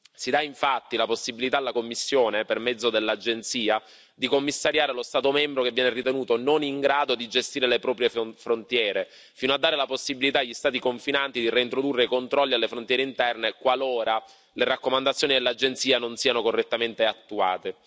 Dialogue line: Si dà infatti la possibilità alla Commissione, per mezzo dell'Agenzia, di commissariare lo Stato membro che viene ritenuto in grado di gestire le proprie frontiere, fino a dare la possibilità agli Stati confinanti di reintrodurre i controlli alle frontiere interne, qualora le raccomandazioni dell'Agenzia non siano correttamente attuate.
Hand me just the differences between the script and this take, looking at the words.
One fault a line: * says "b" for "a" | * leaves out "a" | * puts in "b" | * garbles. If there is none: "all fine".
* puts in "non"